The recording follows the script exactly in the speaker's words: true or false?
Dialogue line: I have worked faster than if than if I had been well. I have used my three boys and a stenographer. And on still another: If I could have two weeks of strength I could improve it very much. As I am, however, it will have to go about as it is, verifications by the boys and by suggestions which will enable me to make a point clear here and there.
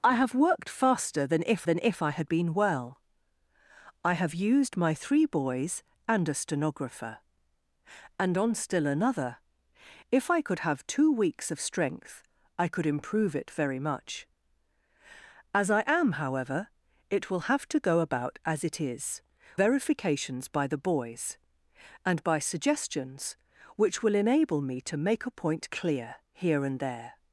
true